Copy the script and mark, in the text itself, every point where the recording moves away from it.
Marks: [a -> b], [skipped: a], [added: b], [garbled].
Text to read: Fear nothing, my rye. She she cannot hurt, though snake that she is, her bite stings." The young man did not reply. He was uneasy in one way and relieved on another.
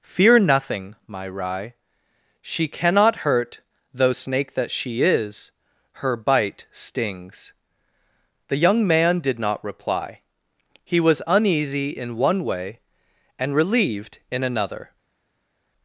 Fear nothing, my rye. She [skipped: she] cannot hurt, though snake that she is, her bite stings." The young man did not reply. He was uneasy in one way and relieved [on -> in] another.